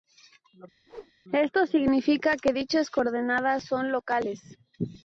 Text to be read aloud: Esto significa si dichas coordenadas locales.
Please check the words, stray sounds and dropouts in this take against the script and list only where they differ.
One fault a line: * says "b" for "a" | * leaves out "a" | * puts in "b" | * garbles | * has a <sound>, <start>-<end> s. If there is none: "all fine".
* has a whoosh, 0.9-1.1 s
* says "que" for "si"
* puts in "son"